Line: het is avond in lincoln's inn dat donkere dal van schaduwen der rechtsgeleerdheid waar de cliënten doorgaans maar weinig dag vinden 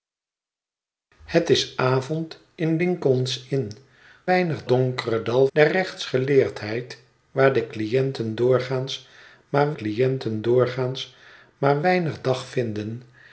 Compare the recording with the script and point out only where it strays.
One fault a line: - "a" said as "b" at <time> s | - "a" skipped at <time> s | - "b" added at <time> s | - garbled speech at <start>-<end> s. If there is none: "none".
- "dat" said as "weinig" at 4.2 s
- "van schaduwen" skipped at 5.5 s
- "cliënten doorgaans maar" added at 9.7 s